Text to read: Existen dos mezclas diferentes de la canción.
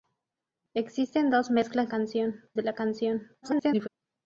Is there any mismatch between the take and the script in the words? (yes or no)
yes